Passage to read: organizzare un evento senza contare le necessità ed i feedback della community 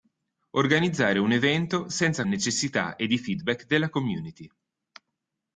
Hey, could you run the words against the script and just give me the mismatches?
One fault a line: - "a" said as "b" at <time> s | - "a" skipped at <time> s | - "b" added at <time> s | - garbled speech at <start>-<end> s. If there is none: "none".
- "contare le" skipped at 2.2 s